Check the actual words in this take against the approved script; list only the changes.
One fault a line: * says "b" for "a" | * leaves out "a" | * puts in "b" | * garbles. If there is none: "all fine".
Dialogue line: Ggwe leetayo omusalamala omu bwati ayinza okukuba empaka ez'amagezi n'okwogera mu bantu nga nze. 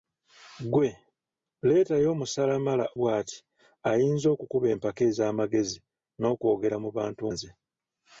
* leaves out "omu"
* leaves out "nga"